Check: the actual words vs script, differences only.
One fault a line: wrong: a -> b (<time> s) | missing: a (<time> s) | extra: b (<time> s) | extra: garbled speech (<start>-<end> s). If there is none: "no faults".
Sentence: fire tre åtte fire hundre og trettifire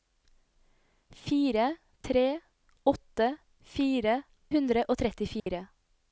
no faults